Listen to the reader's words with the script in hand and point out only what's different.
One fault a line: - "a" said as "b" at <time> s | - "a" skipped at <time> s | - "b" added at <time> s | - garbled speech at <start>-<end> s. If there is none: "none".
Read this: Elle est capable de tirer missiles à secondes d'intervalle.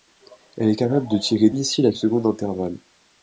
none